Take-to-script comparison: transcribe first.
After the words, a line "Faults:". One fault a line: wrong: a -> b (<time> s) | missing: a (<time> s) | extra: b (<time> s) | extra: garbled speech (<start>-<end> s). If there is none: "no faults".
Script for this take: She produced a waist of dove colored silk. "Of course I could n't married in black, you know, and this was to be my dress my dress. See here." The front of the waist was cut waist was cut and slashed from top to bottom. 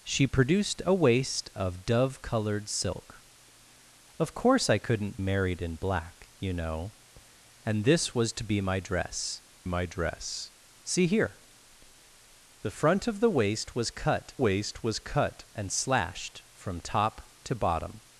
She produced a waist of dove colored silk. "Of course I could n't married in black, you know, and this was to be my dress my dress. See here." The front of the waist was cut waist was cut and slashed from top to bottom.
Faults:
no faults